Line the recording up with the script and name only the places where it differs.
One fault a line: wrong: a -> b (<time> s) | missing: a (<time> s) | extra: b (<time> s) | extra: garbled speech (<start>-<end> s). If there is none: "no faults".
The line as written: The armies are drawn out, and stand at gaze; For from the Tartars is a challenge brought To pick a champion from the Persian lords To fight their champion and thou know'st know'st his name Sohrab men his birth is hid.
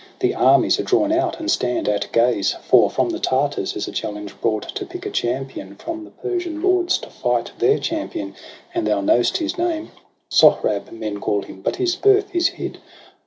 missing: know'st (9.4 s)
extra: call him but (11.2 s)